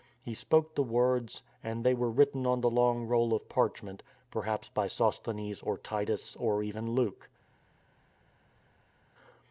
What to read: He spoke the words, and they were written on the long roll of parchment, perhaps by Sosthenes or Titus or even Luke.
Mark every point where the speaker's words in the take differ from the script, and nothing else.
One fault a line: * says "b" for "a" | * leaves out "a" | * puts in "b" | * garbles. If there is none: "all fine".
all fine